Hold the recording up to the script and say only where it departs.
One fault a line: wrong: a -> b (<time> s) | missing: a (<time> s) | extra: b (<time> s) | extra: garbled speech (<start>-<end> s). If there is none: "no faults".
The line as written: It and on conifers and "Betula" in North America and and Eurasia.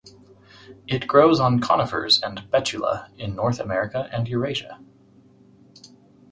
wrong: and -> grows (1.1 s)
missing: and (4.3 s)